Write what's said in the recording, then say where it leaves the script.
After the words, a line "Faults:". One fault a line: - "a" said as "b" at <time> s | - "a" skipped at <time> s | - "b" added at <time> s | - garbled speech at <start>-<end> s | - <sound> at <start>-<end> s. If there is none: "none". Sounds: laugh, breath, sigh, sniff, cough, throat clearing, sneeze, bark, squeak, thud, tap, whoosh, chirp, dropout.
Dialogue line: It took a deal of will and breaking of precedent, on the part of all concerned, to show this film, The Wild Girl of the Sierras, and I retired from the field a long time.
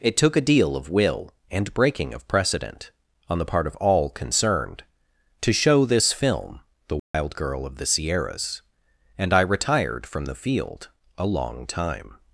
It took a deal of will and breaking of precedent, on the part of all concerned, to show this film, The Wild Girl of the Sierras, and I retired from the field a long time.
Faults:
- dropout at 7.0-7.1 s